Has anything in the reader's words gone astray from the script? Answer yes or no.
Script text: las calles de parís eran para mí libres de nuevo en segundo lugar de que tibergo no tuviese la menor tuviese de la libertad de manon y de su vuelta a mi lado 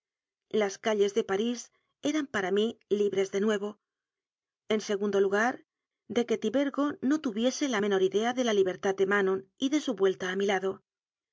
yes